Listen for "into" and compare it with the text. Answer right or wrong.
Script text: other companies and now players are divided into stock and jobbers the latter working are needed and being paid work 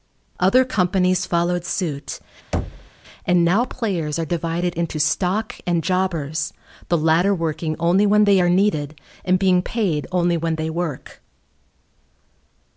right